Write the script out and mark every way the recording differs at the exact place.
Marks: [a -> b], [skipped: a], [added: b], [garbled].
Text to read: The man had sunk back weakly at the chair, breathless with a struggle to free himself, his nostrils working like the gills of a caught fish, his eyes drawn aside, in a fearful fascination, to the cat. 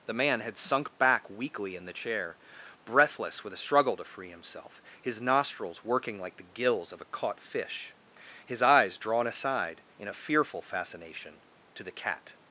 The man had sunk back weakly [at -> in] the chair, breathless with a struggle to free himself, his nostrils working like the gills of a caught fish, his eyes drawn aside, in a fearful fascination, to the cat.